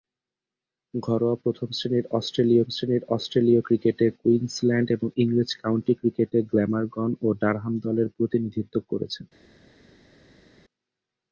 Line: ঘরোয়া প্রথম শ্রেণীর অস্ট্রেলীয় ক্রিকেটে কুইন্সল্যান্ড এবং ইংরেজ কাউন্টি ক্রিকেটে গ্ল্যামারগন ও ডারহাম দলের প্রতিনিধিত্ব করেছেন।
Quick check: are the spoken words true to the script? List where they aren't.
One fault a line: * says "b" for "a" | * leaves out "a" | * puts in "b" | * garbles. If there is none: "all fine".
* puts in "শ্রেণীর অস্ট্রেলীয়"